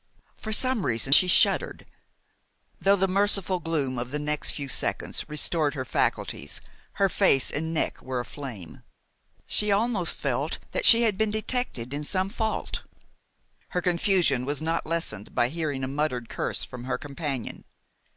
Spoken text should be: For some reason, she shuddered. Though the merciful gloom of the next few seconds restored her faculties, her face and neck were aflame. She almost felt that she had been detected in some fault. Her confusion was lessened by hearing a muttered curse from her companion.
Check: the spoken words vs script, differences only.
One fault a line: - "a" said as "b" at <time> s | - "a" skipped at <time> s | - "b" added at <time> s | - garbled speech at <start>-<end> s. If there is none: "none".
- "not" added at 14.6 s